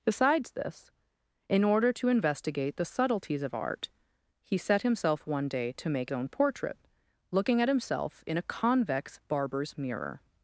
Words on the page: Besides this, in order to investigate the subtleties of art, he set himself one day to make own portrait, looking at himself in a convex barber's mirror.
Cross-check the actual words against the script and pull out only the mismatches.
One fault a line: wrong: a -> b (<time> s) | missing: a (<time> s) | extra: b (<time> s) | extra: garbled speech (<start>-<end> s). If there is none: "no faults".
no faults